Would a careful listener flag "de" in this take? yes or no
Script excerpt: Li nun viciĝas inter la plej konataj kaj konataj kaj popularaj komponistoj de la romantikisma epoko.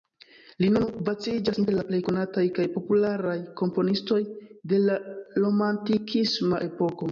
no